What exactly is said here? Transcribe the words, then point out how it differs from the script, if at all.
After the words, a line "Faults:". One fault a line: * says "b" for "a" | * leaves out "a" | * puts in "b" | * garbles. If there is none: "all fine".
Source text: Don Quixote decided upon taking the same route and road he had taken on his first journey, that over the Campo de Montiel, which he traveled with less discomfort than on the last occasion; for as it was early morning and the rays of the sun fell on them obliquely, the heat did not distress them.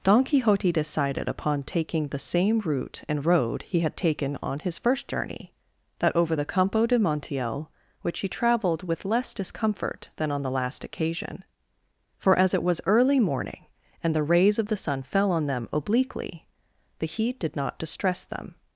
Don Quixote decided upon taking the same route and road he had taken on his first journey, that over the Campo de Montiel, which he traveled with less discomfort than on the last occasion; for as it was early morning and the rays of the sun fell on them obliquely, the heat did not distress them.
Faults:
all fine